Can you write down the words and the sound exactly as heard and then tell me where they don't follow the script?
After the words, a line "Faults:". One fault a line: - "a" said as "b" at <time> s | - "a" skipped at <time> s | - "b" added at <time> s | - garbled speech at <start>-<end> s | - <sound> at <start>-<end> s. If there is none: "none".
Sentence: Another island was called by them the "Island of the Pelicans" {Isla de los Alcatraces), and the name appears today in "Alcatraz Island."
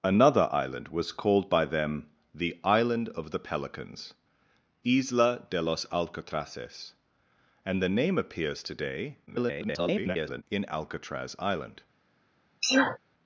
Another island was called by them the "Island of the Pelicans" {Isla de los Alcatraces), and the name appears today [garbled] in "Alcatraz Island."
Faults:
- garbled speech at 9.3-10.4 s
- sneeze at 12.6-13.0 s